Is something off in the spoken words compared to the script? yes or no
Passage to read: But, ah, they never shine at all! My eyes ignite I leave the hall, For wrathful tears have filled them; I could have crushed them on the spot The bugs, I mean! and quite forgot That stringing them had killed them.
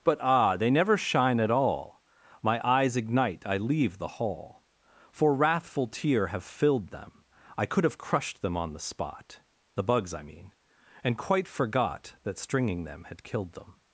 yes